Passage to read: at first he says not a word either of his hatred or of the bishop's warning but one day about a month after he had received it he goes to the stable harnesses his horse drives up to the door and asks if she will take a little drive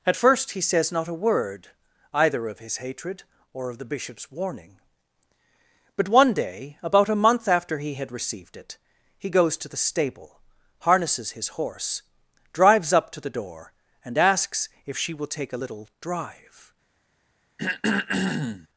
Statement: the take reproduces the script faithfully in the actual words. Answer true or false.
true